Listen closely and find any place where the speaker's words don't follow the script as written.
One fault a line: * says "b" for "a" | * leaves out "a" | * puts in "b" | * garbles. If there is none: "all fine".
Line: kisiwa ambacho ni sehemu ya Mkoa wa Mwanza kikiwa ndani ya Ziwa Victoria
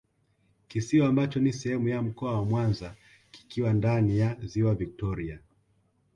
all fine